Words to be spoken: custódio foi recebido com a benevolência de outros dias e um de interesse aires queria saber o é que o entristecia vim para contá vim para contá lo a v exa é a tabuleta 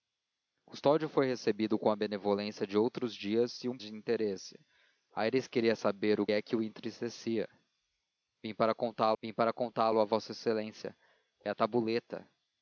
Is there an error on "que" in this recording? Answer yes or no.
no